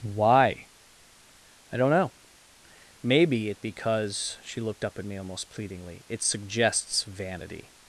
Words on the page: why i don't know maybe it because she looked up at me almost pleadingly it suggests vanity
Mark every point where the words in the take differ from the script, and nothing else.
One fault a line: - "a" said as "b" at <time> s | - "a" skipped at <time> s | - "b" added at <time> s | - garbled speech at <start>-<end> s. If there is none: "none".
none